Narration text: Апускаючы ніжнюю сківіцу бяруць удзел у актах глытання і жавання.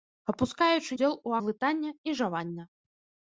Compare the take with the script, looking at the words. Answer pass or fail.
fail